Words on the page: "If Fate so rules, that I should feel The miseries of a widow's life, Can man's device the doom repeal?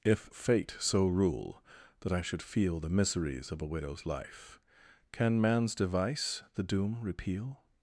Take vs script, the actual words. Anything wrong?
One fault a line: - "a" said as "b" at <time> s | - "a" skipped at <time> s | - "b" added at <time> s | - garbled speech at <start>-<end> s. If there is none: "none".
- "rules" said as "rule" at 1.1 s